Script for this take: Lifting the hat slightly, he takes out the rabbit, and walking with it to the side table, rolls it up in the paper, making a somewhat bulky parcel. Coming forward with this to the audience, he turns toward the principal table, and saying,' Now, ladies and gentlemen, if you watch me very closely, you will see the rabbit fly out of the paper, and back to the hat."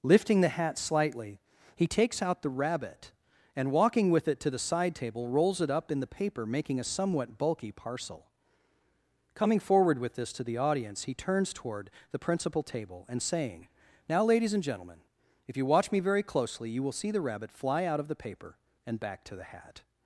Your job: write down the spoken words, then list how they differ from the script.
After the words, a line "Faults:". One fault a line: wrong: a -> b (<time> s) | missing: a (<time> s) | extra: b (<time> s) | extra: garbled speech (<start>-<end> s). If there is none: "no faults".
Lifting the hat slightly, he takes out the rabbit, and walking with it to the side table, rolls it up in the paper, making a somewhat bulky parcel. Coming forward with this to the audience, he turns toward the principal table, and saying,' Now, ladies and gentlemen, if you watch me very closely, you will see the rabbit fly out of the paper, and back to the hat."
Faults:
no faults